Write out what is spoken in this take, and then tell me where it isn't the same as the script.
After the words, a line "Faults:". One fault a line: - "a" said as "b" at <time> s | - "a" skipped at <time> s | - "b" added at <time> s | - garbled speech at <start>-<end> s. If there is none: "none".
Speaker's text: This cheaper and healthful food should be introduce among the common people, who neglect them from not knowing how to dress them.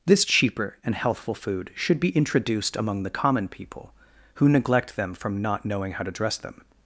This cheaper and healthful food should be introduced among the common people, who neglect them from not knowing how to dress them.
Faults:
- "introduce" said as "introduced" at 2.1 s